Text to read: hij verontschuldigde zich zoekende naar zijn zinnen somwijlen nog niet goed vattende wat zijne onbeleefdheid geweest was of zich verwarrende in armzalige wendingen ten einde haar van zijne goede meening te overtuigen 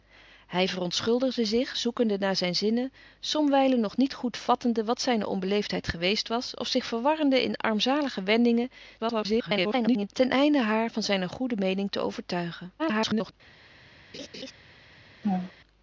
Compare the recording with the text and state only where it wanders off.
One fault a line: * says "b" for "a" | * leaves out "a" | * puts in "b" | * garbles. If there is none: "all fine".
* garbles
* garbles